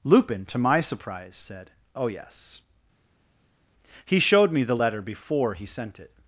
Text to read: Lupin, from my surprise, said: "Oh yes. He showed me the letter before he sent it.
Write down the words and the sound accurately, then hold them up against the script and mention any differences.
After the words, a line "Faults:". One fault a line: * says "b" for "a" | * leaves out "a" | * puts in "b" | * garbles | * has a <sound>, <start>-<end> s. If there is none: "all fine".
Lupin, to my surprise, said: "Oh yes. He showed me the letter before he sent it.
Faults:
* says "to" for "from"